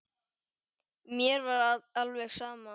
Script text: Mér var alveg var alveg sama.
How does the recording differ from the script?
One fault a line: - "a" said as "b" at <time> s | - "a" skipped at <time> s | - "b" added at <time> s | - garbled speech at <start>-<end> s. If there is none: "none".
- "var alveg" skipped at 2.3 s